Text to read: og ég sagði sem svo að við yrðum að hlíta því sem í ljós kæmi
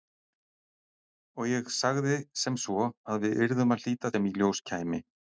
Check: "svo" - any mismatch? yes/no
no